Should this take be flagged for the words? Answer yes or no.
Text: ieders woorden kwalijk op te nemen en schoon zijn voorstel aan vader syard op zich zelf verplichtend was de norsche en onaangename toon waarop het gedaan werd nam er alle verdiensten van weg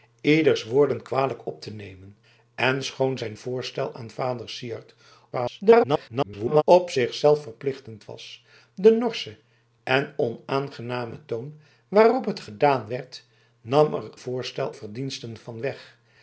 yes